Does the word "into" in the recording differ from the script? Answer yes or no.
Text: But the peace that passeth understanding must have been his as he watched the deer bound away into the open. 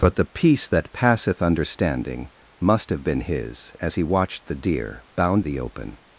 yes